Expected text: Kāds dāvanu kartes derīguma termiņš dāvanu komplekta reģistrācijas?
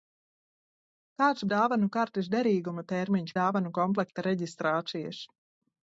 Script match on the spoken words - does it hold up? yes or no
yes